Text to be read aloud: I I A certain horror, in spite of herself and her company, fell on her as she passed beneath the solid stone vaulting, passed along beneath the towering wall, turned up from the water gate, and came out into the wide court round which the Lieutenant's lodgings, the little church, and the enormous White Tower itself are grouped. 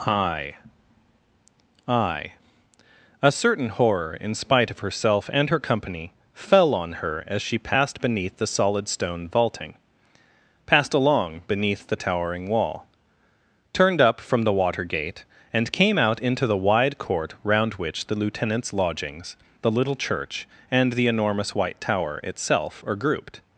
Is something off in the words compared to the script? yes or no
no